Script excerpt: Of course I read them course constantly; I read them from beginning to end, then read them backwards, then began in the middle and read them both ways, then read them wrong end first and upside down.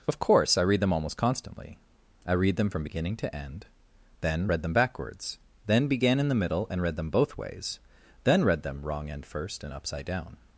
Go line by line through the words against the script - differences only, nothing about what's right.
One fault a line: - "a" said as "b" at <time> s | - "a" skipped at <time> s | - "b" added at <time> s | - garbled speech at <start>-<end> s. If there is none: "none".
- "course" said as "almost" at 0.9 s